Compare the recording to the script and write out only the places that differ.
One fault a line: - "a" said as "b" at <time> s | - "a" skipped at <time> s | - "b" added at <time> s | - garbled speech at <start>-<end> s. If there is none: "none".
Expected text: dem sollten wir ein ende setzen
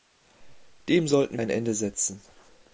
- "wir" skipped at 1.4 s